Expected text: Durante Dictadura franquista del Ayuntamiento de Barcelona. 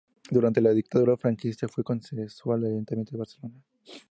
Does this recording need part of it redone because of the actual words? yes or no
yes